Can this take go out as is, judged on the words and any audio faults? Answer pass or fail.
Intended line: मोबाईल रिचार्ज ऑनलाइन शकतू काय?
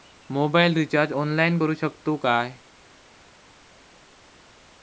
fail